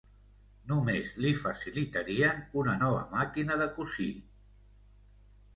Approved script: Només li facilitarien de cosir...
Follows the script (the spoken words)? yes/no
no